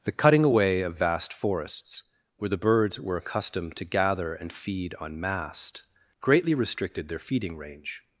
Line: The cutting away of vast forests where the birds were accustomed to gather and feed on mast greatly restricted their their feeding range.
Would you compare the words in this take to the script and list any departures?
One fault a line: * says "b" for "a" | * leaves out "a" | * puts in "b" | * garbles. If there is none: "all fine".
* leaves out "their"